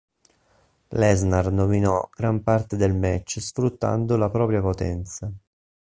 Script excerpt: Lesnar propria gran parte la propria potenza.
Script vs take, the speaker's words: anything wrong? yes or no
yes